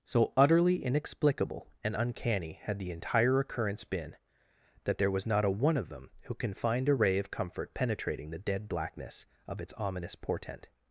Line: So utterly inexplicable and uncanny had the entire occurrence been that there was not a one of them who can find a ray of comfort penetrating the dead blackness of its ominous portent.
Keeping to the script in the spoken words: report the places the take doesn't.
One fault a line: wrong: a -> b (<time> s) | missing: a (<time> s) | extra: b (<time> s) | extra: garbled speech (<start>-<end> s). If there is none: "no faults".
no faults